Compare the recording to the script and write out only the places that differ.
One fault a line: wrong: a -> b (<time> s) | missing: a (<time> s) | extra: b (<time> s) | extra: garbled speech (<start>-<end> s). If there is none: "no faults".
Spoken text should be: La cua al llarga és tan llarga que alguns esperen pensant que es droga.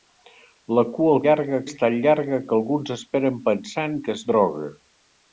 no faults